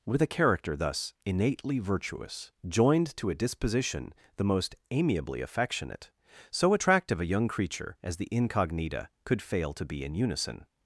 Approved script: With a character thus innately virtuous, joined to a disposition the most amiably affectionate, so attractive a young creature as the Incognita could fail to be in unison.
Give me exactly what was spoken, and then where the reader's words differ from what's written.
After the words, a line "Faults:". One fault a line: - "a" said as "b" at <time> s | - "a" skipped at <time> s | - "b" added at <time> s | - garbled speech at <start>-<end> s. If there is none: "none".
With a character thus innately virtuous, joined to a disposition the most amiably affectionate, so attractive a young creature as the Incognita could fail to be in unison.
Faults:
none